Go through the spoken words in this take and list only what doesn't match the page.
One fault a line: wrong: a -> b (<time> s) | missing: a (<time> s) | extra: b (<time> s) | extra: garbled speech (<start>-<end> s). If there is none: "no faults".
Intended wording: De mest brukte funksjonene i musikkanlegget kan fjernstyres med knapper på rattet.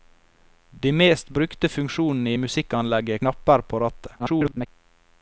missing: kan fjernstyres med (3.2 s)
extra: garbled speech (4.2-4.7 s)